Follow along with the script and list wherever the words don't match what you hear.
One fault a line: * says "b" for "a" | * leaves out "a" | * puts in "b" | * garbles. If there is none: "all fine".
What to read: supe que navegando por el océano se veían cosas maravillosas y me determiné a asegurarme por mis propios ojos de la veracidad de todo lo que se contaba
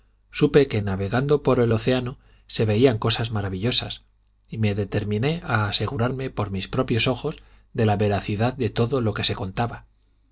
all fine